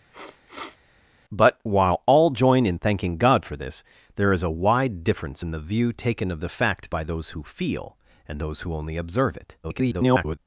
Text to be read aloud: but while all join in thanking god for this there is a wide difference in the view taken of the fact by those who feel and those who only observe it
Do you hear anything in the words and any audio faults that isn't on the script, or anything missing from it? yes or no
yes